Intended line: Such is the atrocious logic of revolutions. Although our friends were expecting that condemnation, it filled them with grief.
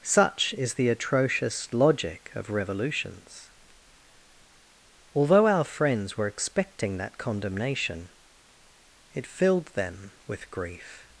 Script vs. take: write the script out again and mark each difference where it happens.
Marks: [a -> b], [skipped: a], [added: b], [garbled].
Such is the atrocious logic of revolutions. Although our friends were expecting that condemnation, it filled them with grief.